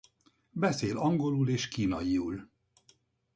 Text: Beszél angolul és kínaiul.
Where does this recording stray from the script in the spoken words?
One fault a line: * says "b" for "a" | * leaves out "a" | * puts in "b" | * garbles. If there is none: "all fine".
all fine